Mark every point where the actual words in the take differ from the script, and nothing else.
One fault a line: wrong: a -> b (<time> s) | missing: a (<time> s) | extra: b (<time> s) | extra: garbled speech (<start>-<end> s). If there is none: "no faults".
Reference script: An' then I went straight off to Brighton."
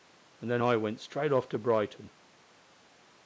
no faults